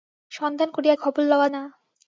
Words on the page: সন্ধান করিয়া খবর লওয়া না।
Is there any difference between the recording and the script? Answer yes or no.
no